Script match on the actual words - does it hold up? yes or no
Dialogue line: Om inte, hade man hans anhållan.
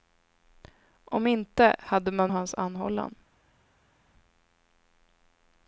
yes